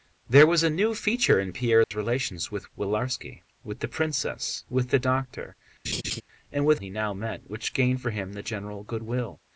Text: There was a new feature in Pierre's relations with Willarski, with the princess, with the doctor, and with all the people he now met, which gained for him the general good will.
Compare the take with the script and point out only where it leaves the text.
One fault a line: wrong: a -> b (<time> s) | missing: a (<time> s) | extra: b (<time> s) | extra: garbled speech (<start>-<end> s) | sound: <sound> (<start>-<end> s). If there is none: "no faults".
sound: dropout (1.8-1.9 s)
sound: laugh (5.8-6.2 s)
missing: all the people (6.8 s)